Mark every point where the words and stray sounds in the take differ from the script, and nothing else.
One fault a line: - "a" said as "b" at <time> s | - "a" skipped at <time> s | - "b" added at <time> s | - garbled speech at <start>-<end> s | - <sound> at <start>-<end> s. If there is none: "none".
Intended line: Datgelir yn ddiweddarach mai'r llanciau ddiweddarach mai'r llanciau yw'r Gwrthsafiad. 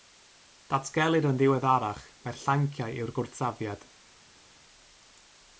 - "ddiweddarach mai'r llanciau" skipped at 3.0 s